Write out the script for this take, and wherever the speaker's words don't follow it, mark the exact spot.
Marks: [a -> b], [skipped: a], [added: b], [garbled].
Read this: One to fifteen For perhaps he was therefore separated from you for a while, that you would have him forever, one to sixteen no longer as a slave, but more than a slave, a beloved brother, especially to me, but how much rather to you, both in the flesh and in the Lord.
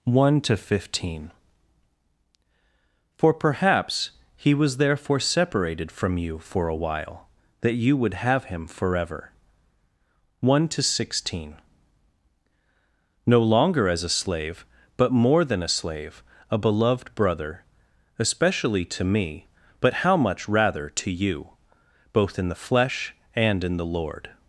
One to fifteen For perhaps he was therefore separated from you for a while, that you would have him forever, one to sixteen no longer as a slave, but more than a slave, a beloved brother, especially to me, but how much rather to you, both in the flesh and in the Lord.